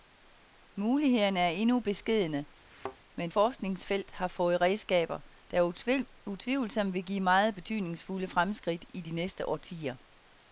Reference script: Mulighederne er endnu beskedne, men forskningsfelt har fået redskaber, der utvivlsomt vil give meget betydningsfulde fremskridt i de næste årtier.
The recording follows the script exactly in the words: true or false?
true